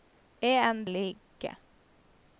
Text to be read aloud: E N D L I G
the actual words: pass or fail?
pass